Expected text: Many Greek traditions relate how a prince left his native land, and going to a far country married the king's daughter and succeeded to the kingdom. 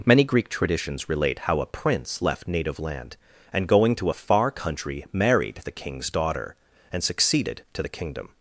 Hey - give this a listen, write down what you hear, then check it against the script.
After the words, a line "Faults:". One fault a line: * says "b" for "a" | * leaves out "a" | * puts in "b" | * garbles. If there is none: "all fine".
Many Greek traditions relate how a prince left native land, and going to a far country married the king's daughter and succeeded to the kingdom.
Faults:
* leaves out "his"